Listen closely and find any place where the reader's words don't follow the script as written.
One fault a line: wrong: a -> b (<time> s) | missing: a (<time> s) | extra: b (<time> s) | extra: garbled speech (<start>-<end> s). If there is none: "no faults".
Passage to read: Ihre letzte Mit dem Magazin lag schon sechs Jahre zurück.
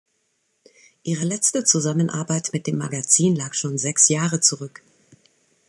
extra: Zusammenarbeit (1.6 s)